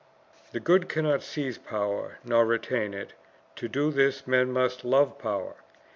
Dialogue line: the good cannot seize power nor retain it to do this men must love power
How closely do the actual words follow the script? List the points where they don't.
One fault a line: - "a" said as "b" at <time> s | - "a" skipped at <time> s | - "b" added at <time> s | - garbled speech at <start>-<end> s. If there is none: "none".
none